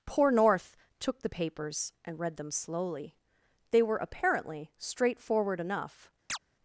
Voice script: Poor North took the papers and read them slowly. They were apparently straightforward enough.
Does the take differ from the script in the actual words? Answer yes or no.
no